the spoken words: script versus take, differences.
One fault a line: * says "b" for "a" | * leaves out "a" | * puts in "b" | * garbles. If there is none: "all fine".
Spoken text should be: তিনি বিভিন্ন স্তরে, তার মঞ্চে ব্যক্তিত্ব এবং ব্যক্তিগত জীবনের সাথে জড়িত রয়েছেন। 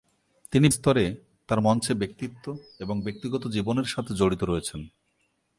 * leaves out "বিভিন্ন"